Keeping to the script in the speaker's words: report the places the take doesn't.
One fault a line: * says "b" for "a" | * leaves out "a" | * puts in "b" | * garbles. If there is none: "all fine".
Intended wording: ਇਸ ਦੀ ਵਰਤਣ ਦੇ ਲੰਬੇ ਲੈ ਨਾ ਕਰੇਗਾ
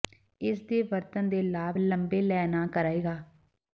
* says "ਦੇ" for "ਦੀ"
* puts in "ਲਾਭ"